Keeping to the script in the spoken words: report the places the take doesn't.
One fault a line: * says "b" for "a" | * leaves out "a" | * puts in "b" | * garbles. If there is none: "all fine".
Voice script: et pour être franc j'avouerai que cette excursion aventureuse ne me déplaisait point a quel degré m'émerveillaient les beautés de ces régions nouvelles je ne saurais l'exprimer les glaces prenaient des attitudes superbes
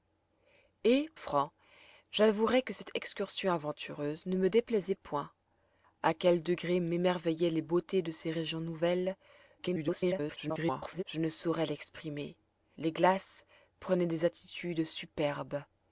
* leaves out "pour être"
* garbles